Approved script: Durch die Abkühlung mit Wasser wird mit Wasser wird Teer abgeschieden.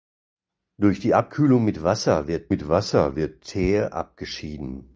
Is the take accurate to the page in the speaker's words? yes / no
yes